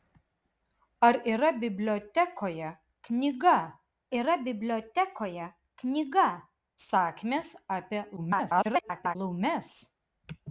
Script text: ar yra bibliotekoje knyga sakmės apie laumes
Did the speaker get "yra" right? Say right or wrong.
right